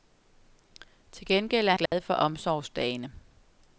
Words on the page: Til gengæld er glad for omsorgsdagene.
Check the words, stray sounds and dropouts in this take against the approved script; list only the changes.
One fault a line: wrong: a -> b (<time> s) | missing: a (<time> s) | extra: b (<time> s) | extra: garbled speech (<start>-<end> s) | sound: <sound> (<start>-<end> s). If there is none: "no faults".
sound: dropout (1.9-1.9 s)